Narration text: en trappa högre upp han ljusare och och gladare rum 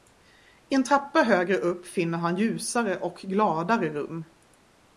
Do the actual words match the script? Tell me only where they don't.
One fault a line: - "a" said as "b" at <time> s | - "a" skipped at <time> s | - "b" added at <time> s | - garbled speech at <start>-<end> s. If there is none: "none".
- "finner" added at 1.9 s
- "och" skipped at 3.2 s